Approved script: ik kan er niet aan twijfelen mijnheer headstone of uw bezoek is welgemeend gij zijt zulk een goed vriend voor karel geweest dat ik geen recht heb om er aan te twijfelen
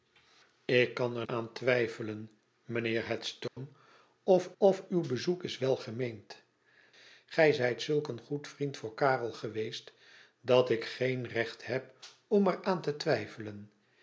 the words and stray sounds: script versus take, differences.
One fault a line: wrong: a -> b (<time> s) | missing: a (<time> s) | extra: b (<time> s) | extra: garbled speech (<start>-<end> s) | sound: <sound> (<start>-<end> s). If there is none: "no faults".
missing: niet (1.2 s)
sound: dropout (3.5-3.6 s)
extra: of (4.6 s)